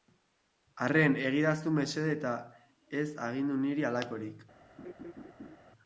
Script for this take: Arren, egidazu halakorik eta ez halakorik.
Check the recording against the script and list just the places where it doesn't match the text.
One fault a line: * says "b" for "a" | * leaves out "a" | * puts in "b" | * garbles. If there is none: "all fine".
* says "mesede" for "halakorik"
* puts in "agindu niri"